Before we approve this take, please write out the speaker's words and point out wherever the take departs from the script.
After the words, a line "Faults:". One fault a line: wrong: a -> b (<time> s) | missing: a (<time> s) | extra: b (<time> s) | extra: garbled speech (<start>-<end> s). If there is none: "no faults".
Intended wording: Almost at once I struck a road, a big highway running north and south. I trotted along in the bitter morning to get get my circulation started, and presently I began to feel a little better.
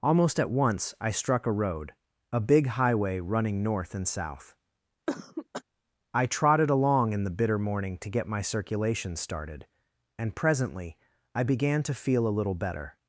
Almost at once I struck a road, a big highway running north and south. I trotted along in the bitter morning to get my circulation started, and presently I began to feel a little better.
Faults:
missing: get (8.3 s)